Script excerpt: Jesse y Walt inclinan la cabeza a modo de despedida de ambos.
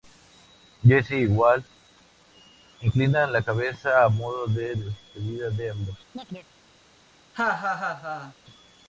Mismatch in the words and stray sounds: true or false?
true